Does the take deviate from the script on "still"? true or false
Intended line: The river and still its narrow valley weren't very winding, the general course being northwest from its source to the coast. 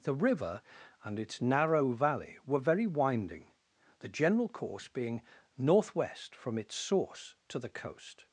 true